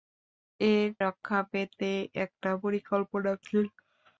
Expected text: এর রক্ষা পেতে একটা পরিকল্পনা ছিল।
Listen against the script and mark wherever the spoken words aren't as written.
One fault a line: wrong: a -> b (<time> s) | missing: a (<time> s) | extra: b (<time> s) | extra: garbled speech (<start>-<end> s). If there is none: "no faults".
no faults